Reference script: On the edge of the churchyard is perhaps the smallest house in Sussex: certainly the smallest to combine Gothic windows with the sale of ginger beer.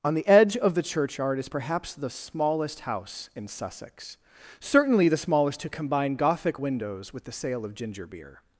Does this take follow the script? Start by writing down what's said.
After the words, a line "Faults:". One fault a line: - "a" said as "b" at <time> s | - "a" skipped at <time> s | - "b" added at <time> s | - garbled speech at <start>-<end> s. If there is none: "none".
On the edge of the churchyard is perhaps the smallest house in Sussex: certainly the smallest to combine Gothic windows with the sale of ginger beer.
Faults:
none